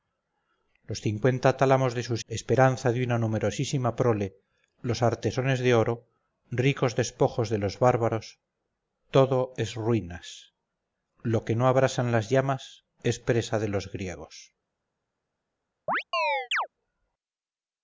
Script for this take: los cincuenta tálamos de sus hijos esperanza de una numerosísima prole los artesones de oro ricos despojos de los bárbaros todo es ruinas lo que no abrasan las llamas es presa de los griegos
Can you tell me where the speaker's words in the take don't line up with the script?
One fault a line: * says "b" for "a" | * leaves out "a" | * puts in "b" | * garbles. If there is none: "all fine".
* leaves out "hijos"